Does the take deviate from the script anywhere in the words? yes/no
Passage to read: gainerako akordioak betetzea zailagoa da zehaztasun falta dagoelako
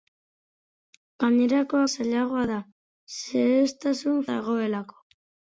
yes